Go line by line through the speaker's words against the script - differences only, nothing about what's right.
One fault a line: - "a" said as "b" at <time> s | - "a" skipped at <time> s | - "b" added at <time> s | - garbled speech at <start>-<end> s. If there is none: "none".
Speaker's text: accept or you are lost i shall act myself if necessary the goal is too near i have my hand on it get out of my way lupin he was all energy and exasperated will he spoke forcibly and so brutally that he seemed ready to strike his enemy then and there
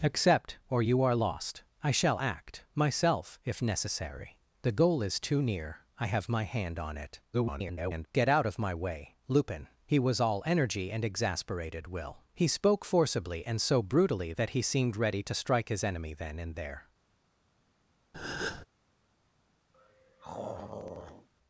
- garbled speech at 7.3-8.1 s